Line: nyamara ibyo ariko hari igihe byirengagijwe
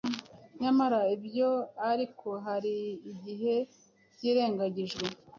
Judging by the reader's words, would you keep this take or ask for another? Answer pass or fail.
pass